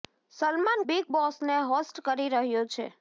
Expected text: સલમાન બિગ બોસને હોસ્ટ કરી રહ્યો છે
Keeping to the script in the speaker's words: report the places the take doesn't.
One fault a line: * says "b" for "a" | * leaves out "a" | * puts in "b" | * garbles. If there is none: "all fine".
all fine